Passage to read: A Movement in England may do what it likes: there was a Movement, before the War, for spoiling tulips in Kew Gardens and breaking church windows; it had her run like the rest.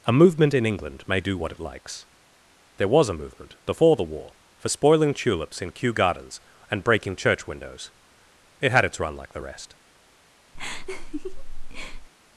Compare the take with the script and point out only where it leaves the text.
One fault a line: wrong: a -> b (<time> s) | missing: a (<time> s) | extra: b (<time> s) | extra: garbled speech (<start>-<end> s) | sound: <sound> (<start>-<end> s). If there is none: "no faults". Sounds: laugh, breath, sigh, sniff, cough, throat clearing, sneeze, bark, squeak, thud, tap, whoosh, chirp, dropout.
wrong: her -> its (8.8 s)
sound: laugh (10.5-12.1 s)